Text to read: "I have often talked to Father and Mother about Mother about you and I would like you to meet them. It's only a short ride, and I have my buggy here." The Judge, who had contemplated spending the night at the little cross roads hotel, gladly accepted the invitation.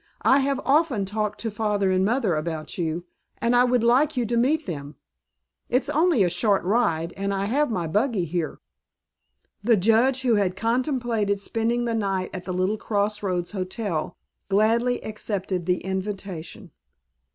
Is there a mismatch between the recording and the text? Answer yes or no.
yes